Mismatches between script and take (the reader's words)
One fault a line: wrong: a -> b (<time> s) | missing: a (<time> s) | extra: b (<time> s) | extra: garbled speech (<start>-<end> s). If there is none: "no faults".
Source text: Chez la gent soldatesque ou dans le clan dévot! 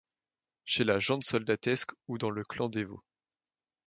no faults